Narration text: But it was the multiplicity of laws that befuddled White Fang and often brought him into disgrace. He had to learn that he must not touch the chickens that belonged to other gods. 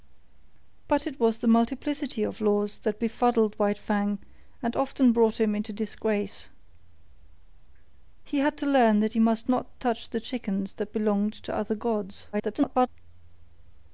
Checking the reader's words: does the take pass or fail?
fail